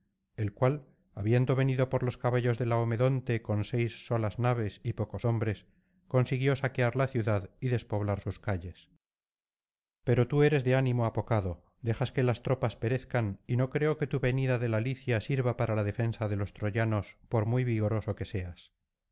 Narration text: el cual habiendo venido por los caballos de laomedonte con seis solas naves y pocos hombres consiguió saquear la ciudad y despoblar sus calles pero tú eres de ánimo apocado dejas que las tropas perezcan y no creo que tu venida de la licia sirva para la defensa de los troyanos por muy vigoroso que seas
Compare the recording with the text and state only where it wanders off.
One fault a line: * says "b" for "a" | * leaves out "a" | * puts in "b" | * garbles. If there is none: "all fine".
all fine